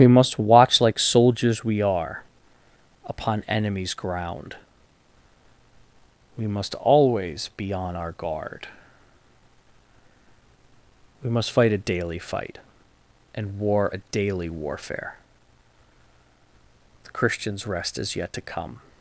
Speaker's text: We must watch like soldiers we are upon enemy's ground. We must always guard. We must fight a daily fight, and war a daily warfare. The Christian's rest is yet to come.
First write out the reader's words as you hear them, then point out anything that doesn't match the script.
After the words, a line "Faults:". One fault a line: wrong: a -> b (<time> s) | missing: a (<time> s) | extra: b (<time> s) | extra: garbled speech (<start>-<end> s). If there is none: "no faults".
We must watch like soldiers we are upon enemy's ground. We must always be' on our guard. We must fight a daily fight, and war a daily warfare. The Christian's rest is yet to come.
Faults:
extra: be on our (7.5 s)